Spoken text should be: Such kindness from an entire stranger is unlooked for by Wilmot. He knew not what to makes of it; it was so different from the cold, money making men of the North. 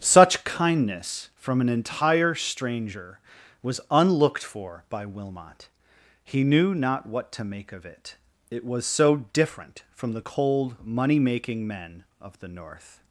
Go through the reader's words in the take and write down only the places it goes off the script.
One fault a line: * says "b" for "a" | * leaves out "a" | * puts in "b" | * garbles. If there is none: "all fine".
* says "was" for "is"
* says "make" for "makes"